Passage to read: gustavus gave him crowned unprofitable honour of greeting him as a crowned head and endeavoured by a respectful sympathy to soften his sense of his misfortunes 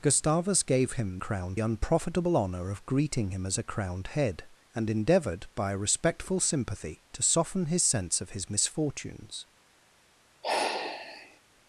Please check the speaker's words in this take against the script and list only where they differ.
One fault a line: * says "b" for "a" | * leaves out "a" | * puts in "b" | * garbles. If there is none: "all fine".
all fine